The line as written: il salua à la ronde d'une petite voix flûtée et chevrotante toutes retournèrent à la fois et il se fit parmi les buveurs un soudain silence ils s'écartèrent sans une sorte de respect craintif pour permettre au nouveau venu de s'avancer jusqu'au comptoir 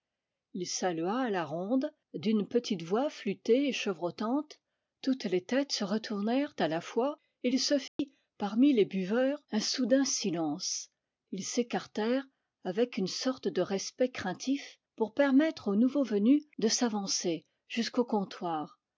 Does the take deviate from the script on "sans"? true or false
true